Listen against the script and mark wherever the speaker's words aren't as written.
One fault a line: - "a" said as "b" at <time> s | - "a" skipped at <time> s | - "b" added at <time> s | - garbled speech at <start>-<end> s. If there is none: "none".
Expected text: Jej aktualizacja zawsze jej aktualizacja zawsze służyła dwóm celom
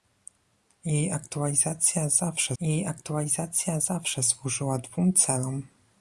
none